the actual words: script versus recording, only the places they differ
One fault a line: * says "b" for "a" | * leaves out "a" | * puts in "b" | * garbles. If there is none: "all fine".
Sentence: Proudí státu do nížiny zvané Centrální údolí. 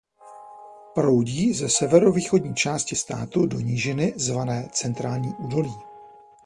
* puts in "ze severovýchodní části"